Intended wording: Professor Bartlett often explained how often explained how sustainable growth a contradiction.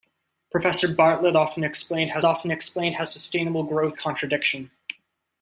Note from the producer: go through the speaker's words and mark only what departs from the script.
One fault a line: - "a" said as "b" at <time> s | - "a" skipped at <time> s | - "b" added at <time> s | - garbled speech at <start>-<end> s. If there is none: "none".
none